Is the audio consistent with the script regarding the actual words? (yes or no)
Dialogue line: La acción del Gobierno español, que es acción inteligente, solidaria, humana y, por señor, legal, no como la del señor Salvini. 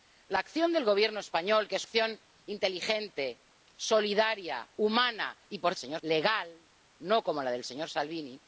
yes